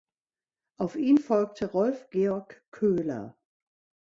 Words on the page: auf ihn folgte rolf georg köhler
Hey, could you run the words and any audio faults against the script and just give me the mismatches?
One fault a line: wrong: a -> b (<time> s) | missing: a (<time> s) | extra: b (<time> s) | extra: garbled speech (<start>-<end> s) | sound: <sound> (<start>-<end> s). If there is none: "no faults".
no faults